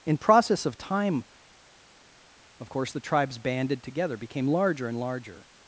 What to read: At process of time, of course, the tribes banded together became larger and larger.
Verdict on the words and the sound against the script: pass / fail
fail